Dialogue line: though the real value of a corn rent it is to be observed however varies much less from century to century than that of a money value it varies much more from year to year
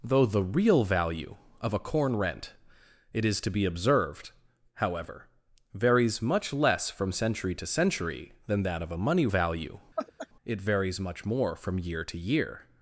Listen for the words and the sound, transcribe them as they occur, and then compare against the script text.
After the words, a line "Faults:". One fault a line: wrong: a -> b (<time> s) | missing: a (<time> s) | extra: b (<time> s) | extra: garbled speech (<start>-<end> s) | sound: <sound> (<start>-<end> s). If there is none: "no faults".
though the real value of a corn rent it is to be observed however varies much less from century to century than that of a money value it varies much more from year to year
Faults:
sound: laugh (10.0-10.3 s)